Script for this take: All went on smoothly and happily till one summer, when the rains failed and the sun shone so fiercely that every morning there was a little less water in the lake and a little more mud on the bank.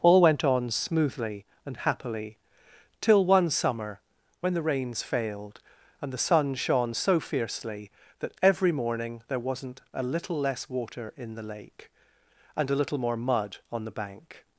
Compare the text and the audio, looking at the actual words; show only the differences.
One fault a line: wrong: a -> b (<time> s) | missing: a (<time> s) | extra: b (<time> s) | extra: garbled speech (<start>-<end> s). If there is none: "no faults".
wrong: was -> wasn't (9.4 s)